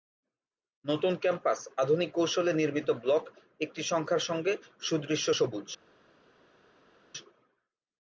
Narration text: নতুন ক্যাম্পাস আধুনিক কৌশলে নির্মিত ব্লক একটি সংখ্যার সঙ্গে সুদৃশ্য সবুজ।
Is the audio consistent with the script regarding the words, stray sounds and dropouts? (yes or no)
yes